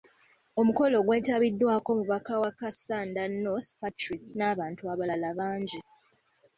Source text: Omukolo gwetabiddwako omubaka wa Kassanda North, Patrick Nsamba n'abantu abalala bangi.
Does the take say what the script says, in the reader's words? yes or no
no